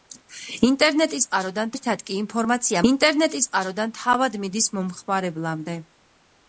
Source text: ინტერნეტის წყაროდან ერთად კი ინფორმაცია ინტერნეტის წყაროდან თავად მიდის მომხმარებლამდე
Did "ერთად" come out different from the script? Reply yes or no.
no